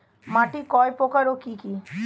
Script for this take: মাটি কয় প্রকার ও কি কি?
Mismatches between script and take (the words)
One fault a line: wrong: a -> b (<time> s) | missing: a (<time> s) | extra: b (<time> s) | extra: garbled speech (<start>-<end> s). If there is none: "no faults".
no faults